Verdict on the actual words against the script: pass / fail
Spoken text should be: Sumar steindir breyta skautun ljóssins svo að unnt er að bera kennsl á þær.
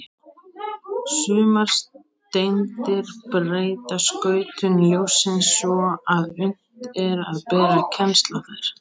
pass